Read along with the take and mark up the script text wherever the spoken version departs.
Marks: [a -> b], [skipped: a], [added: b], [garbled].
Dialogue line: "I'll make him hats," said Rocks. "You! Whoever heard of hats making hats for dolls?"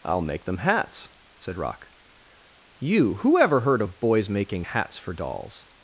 "I'll make [him -> them] hats," said [Rocks. -> Rock] "You! Whoever heard of [hats -> boys] making hats for dolls?"